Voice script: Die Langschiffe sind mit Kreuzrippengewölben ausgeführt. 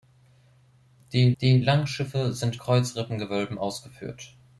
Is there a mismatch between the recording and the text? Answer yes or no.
yes